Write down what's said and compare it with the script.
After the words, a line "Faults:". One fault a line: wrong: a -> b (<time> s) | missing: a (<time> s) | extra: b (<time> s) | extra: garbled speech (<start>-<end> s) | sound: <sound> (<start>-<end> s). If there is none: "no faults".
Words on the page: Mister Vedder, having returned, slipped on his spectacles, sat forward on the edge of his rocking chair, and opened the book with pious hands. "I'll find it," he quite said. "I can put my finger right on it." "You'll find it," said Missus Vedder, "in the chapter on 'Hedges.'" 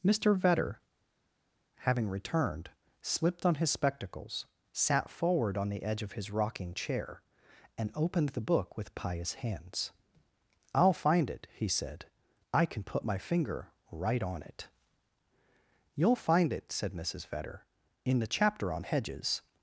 Mister Vedder, having returned, slipped on his spectacles, sat forward on the edge of his rocking chair, and opened the book with pious hands. "I'll find it," he said. "I can put my finger right on it." "You'll find it," said Missus Vedder, "in the chapter on 'Hedges.'"
Faults:
missing: quite (11.7 s)